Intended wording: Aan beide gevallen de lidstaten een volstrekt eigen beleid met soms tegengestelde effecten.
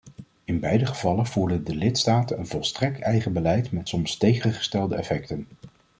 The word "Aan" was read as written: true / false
false